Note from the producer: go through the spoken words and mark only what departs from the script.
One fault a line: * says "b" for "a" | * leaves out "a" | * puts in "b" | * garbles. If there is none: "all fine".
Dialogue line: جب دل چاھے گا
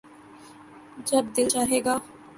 all fine